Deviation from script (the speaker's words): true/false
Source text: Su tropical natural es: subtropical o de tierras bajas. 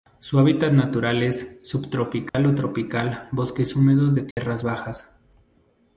true